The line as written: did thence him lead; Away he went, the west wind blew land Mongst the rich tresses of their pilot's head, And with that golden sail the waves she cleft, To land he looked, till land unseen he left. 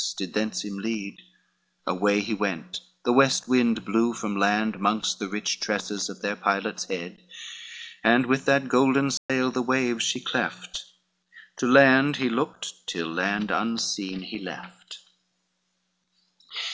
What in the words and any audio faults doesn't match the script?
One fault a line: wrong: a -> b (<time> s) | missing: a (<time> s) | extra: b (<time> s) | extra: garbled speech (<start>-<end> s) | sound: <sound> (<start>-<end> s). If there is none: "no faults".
extra: from (4.2 s)
sound: dropout (9.2-9.3 s)